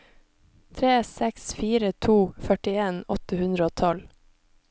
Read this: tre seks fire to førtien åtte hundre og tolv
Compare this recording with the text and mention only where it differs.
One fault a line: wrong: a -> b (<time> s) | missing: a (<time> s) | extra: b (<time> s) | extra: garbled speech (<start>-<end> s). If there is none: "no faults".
no faults